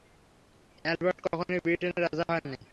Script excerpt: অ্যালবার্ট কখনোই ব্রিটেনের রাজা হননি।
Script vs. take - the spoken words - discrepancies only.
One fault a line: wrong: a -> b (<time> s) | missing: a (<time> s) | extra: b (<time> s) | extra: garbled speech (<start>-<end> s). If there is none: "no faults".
no faults